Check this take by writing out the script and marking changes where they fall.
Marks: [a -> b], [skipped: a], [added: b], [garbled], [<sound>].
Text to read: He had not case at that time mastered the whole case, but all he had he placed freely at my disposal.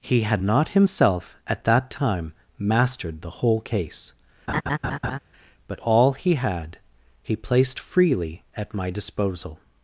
He had not [case -> himself] at that time mastered the whole case, [laugh] but all he had he placed freely at my disposal.